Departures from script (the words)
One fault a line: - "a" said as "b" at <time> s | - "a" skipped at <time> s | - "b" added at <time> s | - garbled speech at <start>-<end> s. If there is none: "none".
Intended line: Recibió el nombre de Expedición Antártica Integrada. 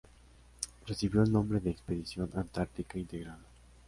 none